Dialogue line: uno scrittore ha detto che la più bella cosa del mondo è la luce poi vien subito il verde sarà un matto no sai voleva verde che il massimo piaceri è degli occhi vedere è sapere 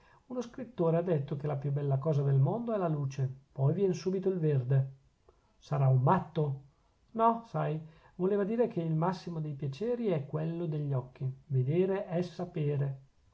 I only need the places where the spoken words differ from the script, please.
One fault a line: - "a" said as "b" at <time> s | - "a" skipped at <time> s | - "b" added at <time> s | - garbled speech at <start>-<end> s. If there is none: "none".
- "verde" said as "dire" at 8.4 s
- "dei" added at 9.4 s
- "quello" added at 10.2 s